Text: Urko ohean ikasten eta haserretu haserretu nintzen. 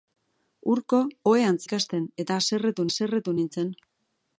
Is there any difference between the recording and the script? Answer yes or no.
no